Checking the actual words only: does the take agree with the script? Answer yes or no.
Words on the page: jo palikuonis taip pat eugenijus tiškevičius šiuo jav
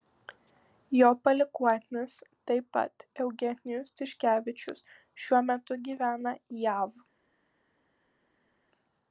no